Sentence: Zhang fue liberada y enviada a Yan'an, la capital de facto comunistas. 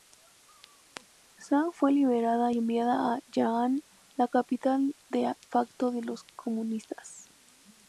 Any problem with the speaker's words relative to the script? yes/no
yes